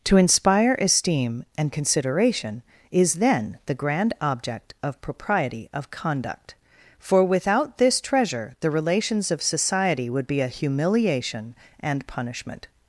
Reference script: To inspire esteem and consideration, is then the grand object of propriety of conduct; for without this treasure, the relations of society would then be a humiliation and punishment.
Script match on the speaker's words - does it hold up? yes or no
no